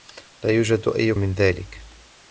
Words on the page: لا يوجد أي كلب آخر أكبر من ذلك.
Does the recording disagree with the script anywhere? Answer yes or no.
yes